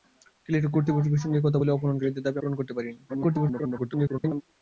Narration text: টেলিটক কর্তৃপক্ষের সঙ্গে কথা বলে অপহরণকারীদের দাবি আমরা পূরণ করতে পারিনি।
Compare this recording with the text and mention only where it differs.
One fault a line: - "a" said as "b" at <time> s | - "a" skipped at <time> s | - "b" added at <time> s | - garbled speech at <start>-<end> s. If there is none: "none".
- "আমরা" skipped at 2.4 s
- garbled speech at 3.1-4.4 s